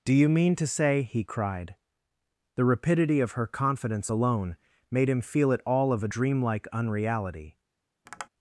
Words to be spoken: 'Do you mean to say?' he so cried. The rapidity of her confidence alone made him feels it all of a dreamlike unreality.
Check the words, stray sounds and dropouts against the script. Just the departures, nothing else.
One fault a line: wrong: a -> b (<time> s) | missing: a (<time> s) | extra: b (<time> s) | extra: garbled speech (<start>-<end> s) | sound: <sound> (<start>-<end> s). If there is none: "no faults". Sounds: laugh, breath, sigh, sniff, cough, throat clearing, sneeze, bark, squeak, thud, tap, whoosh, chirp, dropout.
missing: so (1.2 s)
wrong: feels -> feel (5.2 s)
sound: tap (8.1-8.3 s)